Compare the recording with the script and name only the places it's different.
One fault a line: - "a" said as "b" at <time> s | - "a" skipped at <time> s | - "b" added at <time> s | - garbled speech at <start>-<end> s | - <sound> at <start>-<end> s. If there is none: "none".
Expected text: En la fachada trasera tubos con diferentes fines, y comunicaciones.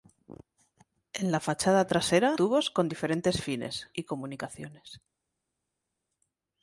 none